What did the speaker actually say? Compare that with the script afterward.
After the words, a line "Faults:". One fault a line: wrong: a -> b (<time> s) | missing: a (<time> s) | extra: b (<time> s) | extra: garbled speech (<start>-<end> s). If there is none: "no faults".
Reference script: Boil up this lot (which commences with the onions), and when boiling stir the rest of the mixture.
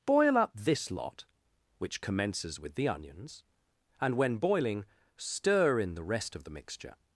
Boil up this lot (which commences with the onions), and when boiling stir in the rest of the mixture.
Faults:
extra: in (5.8 s)